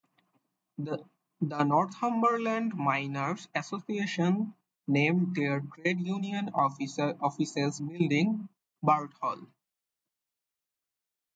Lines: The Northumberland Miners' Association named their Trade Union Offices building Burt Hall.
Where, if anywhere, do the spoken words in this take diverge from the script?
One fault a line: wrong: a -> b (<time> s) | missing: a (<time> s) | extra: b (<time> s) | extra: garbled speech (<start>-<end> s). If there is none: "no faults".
no faults